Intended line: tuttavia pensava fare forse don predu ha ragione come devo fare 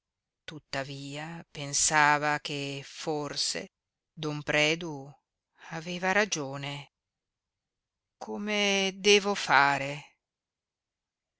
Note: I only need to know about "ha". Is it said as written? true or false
false